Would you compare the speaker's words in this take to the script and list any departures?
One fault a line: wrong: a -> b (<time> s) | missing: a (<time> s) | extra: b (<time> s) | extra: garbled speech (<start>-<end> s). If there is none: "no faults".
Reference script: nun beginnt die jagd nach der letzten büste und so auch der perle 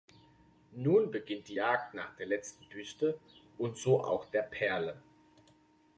no faults